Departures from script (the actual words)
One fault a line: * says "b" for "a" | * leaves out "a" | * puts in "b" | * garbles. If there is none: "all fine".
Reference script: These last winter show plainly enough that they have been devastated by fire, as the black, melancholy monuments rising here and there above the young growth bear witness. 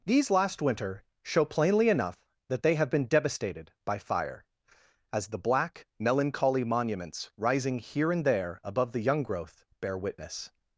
all fine